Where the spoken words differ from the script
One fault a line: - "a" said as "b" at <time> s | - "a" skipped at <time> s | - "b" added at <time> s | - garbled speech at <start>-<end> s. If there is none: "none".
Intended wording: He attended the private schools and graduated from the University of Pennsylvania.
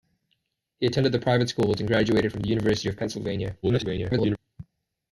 - garbled speech at 3.6-4.4 s